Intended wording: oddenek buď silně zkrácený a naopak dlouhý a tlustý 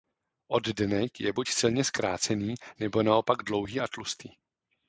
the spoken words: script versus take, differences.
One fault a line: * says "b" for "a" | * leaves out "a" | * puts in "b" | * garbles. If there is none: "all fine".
* puts in "je"
* says "nebo" for "a"